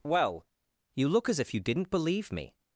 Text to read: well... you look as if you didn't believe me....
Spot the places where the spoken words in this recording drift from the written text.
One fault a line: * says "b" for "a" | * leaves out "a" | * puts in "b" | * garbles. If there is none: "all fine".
all fine